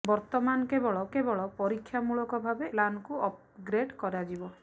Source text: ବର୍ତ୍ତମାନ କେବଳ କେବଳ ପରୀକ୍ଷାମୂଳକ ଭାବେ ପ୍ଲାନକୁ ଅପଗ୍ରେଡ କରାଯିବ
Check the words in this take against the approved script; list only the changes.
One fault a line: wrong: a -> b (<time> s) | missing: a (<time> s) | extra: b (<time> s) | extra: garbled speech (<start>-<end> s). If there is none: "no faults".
no faults